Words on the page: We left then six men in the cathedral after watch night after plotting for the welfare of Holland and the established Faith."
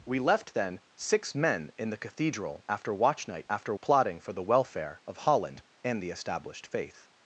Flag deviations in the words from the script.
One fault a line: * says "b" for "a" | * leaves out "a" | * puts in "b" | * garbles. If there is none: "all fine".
all fine